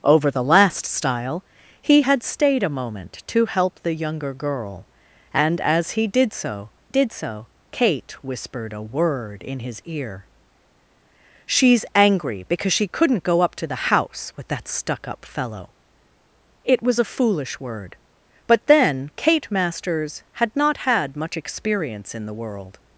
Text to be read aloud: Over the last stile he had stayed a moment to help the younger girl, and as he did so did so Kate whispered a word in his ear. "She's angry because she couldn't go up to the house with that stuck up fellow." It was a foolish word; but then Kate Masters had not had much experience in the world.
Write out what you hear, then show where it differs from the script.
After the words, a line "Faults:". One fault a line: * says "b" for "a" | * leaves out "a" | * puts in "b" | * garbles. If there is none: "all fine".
Over the last stile he had stayed a moment to help the younger girl, and as he did so did so Kate whispered a word in his ear. "She's angry because she couldn't go up to the house with that stuck up fellow." It was a foolish word; but then Kate Masters had not had much experience in the world.
Faults:
all fine